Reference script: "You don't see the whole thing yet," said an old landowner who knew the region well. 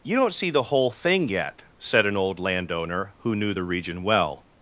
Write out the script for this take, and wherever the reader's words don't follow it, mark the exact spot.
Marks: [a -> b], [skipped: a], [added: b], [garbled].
"You don't see the whole thing yet," said an old landowner who knew the region well.